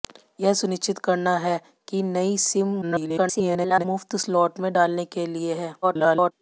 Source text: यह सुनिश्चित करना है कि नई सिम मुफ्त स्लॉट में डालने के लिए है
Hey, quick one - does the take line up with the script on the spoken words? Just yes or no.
no